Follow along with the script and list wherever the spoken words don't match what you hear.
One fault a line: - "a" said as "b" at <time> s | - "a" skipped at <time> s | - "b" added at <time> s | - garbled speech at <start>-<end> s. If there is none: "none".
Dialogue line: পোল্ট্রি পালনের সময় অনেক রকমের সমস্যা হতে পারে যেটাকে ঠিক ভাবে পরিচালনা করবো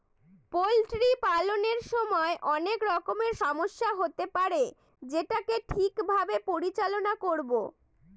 none